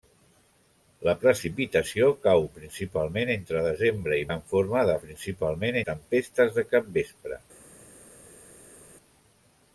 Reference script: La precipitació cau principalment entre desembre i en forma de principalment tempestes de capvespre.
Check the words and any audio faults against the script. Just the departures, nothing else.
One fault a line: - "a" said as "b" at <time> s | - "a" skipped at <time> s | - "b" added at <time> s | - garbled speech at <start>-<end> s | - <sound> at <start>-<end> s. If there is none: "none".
none